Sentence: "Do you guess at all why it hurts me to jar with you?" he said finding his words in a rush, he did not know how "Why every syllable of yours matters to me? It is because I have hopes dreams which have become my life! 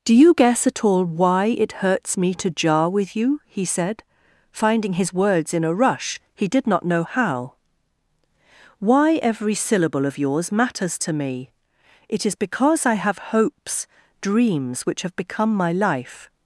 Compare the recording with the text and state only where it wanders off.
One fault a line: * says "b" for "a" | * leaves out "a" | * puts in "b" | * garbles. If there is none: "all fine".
all fine